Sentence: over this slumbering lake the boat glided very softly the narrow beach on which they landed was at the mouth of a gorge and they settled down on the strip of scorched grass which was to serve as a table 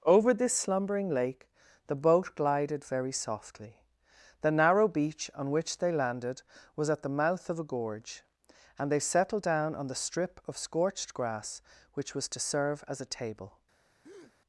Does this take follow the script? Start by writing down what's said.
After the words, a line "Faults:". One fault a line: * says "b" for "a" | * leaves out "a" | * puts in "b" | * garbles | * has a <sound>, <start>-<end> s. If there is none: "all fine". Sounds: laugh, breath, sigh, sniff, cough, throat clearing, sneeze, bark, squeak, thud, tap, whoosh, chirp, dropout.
over this slumbering lake the boat glided very softly the narrow beach on which they landed was at the mouth of a gorge and they settled down on the strip of scorched grass which was to serve as a table
Faults:
* has a breath, 14.0-14.4 s